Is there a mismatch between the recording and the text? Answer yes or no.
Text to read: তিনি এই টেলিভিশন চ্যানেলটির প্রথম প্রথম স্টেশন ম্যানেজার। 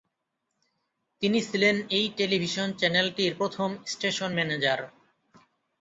yes